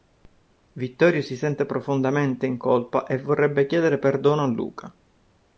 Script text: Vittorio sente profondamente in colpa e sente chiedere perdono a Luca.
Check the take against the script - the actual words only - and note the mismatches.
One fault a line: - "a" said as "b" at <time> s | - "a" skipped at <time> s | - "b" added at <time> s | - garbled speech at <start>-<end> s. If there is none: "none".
- "si" added at 1.2 s
- "sente" said as "vorrebbe" at 3.2 s